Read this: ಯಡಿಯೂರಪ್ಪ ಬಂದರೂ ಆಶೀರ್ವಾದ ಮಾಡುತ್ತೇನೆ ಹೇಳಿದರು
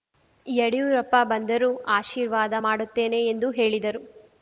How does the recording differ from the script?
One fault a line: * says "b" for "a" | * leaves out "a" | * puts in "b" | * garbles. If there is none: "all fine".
* puts in "ಎಂದು"